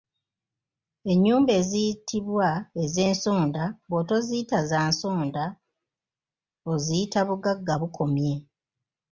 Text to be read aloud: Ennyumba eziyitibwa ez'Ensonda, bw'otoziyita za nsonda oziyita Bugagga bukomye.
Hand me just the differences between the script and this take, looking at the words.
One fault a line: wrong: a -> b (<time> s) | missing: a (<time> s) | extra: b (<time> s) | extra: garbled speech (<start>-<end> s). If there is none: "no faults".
no faults